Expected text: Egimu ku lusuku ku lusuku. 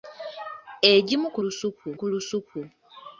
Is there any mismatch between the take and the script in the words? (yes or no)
no